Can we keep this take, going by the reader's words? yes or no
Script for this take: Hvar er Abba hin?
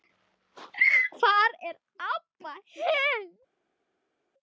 yes